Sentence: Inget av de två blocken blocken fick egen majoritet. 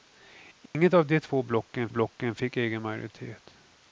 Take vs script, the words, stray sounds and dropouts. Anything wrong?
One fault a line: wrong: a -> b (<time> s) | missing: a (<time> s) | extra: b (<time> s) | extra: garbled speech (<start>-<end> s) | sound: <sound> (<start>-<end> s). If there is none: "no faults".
sound: dropout (0.7-0.7 s)